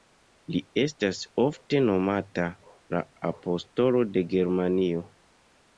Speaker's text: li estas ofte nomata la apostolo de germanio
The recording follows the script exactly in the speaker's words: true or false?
true